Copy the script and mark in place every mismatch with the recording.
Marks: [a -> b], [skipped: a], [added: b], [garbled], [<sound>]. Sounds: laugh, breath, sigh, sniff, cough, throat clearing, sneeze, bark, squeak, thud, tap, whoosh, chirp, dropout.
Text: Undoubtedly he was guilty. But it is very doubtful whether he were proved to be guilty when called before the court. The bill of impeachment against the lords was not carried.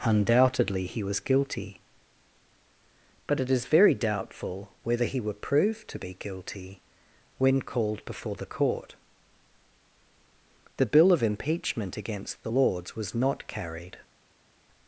Undoubtedly he was guilty. But it is very doubtful whether he were proved to be guilty when called before the court. The bill of impeachment against the lords was not carried.